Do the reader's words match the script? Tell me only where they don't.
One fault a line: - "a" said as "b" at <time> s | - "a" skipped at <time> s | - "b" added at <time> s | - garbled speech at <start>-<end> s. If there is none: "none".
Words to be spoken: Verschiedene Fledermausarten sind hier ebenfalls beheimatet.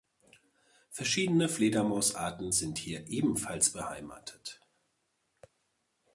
none